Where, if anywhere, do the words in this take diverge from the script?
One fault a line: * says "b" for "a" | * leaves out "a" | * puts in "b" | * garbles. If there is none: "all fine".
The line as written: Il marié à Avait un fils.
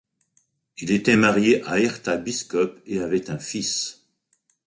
* puts in "était"
* puts in "Herta Biskup et"